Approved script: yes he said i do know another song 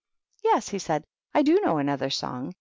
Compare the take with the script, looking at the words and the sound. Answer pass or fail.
pass